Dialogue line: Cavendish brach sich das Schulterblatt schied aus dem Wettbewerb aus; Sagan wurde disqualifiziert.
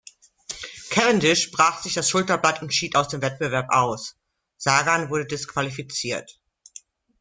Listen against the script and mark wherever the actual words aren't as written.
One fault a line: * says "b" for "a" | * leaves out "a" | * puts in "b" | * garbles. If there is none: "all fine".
* puts in "und"